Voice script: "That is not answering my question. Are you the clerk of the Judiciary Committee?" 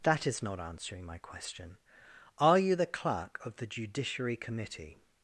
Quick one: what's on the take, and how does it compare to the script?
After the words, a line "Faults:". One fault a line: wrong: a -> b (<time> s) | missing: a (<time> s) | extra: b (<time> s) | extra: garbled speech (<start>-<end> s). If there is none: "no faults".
"That is not answering my question. Are you the clerk of the Judiciary Committee?"
Faults:
no faults